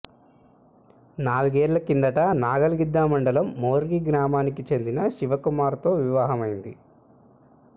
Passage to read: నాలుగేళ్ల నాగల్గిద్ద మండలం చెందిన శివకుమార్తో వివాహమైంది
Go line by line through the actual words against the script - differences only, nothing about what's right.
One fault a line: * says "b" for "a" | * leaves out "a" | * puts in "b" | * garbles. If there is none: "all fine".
* puts in "కిందట"
* puts in "మోర్గి గ్రామానికి"